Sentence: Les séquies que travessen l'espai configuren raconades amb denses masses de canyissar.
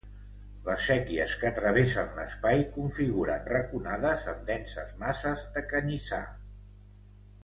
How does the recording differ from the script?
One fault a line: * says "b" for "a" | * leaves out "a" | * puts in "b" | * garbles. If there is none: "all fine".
all fine